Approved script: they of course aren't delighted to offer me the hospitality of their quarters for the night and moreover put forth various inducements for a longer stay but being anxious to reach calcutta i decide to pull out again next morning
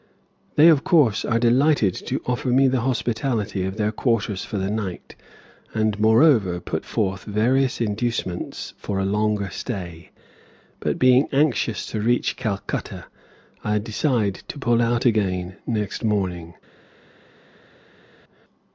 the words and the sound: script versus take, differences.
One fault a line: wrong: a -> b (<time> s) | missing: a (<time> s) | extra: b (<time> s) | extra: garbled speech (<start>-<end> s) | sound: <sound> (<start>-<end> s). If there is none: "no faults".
wrong: aren't -> are (1.2 s)